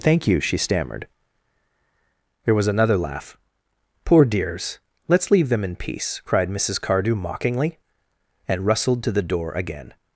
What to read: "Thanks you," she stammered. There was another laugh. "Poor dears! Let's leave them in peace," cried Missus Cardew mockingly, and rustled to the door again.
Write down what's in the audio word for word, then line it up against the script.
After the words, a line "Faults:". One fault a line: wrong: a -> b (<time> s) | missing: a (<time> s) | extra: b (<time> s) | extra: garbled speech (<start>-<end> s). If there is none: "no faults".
"Thank you," she stammered. There was another laugh. "Poor dears! Let's leave them in peace," cried Missus Cardew mockingly, and rustled to the door again.
Faults:
wrong: Thanks -> Thank (0.0 s)